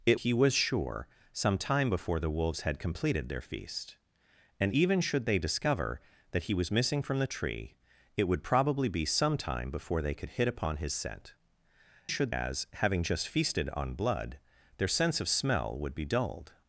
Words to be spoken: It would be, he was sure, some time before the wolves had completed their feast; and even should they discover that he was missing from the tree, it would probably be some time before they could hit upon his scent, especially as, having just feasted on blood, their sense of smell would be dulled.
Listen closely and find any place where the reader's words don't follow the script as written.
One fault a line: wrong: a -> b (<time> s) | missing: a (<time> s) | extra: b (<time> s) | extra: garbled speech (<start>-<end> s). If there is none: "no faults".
missing: would be (0.2 s)
wrong: especially -> should (12.1 s)